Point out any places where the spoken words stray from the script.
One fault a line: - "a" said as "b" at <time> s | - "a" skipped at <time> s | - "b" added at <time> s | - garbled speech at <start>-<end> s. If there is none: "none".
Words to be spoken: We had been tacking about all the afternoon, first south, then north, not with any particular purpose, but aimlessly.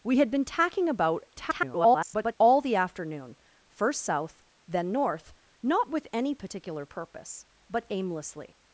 - garbled speech at 1.4-2.4 s